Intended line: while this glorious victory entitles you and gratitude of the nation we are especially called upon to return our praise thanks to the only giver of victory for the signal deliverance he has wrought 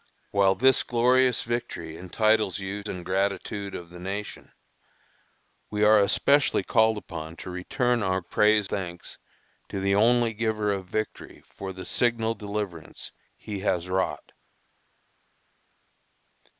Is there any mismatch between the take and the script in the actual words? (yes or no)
no